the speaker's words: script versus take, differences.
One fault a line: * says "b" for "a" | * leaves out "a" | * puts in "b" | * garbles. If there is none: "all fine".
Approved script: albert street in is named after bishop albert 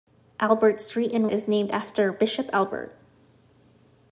all fine